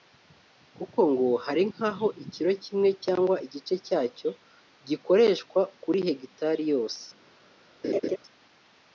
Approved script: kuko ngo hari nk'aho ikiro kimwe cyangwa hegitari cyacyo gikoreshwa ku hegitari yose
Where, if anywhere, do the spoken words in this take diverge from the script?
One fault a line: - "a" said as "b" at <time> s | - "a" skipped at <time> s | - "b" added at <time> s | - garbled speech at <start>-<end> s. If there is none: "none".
- "hegitari" said as "igice" at 3.5 s
- "ku" said as "kuri" at 5.8 s